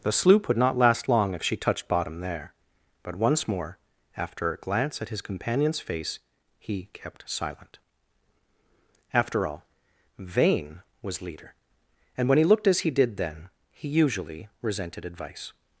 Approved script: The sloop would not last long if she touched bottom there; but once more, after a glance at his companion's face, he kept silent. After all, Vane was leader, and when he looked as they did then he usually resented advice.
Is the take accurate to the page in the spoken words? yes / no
no